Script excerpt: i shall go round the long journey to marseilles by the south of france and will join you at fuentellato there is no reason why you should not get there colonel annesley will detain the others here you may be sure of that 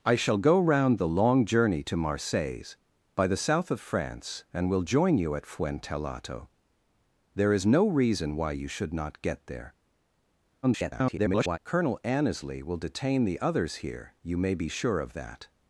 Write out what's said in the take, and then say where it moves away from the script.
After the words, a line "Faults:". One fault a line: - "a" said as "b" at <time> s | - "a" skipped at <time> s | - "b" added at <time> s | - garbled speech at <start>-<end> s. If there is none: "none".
i shall go round the long journey to marseilles by the south of france and will join you at fuentellato there is no reason why you should not get there [garbled] colonel annesley will detain the others here you may be sure of that
Faults:
- garbled speech at 10.6-11.6 s